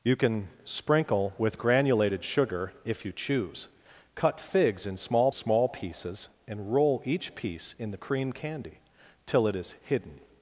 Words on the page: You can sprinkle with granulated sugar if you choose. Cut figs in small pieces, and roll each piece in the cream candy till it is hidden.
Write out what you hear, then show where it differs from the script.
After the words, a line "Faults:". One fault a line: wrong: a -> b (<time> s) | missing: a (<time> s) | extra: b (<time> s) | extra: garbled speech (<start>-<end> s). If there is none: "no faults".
You can sprinkle with granulated sugar if you choose. Cut figs in small small pieces, and roll each piece in the cream candy till it is hidden.
Faults:
extra: small (5.3 s)